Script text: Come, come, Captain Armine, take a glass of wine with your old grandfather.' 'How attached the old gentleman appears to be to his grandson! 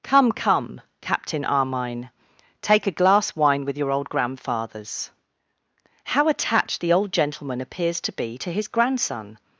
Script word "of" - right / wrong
wrong